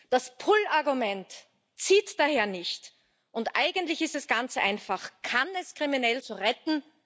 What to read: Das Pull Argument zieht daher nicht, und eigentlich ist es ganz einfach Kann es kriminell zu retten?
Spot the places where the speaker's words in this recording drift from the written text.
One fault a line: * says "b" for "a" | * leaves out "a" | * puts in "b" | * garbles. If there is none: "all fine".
all fine